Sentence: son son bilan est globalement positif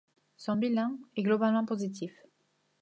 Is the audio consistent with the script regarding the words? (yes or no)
no